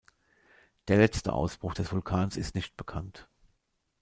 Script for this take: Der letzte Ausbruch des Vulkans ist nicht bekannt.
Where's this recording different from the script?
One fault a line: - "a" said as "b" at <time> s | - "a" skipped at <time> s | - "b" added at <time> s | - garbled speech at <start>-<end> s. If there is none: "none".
none